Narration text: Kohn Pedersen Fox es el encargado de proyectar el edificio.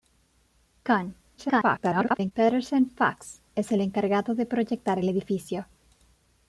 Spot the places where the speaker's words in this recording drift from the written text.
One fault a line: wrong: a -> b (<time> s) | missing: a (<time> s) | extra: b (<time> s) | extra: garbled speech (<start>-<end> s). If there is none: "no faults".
extra: garbled speech (1.4-2.3 s)